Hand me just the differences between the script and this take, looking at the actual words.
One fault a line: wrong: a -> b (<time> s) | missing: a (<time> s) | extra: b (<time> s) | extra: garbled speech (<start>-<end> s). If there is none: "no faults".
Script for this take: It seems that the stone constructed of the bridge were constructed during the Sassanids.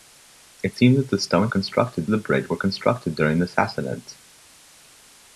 no faults